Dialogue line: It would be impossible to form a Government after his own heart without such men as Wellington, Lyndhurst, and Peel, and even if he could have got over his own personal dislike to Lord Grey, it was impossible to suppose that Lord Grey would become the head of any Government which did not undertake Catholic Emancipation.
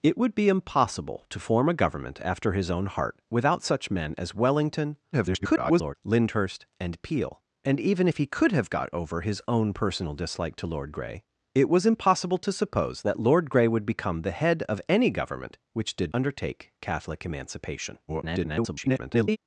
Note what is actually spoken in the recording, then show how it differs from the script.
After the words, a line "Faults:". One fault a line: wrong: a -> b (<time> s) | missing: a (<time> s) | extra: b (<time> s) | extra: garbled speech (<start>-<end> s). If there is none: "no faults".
It would be impossible to form a Government after his own heart without such men as Wellington, [garbled] Lyndhurst, and Peel, and even if he could have got over his own personal dislike to Lord Grey, it was impossible to suppose that Lord Grey would become the head of any Government which did undertake Catholic Emancipation. [garbled]
Faults:
extra: garbled speech (5.1-5.9 s)
missing: not (16.1 s)
extra: garbled speech (18.1-19.4 s)